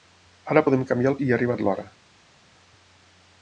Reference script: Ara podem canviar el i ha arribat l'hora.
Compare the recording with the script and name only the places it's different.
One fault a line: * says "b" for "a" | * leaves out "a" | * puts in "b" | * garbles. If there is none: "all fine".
all fine